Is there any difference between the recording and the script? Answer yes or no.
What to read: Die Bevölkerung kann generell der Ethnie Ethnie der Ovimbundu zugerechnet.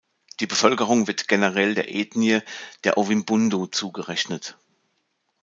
yes